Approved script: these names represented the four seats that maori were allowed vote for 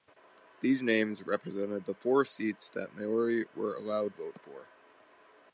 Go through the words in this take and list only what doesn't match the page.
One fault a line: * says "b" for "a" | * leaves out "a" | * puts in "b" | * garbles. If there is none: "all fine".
all fine